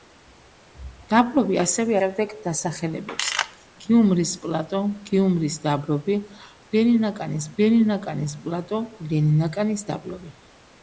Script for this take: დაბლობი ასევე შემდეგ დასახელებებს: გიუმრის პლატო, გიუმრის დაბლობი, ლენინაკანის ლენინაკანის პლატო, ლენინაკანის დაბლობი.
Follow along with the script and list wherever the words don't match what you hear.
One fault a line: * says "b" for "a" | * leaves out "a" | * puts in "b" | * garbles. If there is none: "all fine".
all fine